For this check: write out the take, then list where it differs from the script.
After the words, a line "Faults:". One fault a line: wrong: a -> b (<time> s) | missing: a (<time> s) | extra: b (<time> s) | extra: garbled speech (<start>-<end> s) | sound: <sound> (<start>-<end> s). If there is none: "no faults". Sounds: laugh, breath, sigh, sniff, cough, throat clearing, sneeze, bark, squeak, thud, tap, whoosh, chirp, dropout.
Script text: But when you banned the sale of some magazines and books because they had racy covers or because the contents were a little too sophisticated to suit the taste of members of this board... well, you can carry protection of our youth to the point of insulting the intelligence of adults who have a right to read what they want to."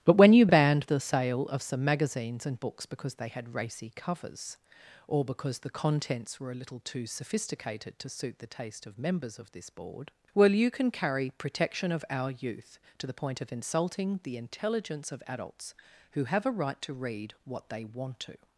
But when you banned the sale of some magazines and books because they had racy covers or because the contents were a little too sophisticated to suit the taste of members of this board... well, you can carry protection of our youth to the point of insulting the intelligence of adults who have a right to read what they want to."
Faults:
no faults